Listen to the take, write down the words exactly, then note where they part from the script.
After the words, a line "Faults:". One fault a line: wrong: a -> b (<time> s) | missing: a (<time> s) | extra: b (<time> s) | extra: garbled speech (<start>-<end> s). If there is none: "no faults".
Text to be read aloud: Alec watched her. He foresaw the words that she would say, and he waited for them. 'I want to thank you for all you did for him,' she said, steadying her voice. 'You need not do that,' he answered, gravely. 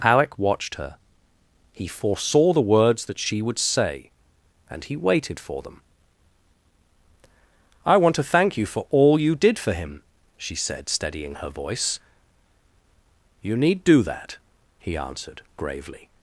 Alec watched her. He foresaw the words that she would say, and he waited for them. 'I want to thank you for all you did for him,' she said, steadying her voice. 'You need do that,' he answered, gravely.
Faults:
missing: not (13.9 s)